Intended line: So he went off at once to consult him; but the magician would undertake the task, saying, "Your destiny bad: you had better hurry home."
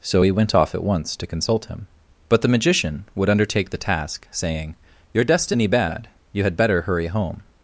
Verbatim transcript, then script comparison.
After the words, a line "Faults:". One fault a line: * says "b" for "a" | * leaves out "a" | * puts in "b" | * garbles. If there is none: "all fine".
So he went off at once to consult him; but the magician would undertake the task, saying, "Your destiny bad: you had better hurry home."
Faults:
all fine